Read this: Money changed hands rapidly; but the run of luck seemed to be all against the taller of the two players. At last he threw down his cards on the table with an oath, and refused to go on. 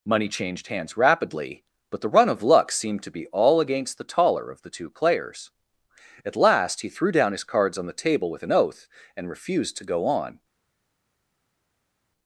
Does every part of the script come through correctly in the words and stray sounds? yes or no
yes